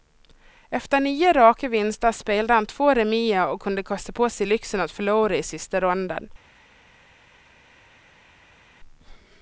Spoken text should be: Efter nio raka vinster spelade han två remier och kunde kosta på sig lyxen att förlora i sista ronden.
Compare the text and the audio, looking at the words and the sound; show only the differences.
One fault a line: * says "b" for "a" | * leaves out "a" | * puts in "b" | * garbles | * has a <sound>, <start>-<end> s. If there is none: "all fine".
all fine